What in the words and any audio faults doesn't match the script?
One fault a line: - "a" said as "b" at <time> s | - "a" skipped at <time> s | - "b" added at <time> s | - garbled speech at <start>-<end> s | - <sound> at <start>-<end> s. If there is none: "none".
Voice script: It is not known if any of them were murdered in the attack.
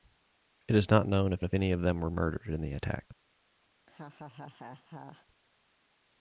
- "if" added at 1.4 s
- laugh at 3.8-5.3 s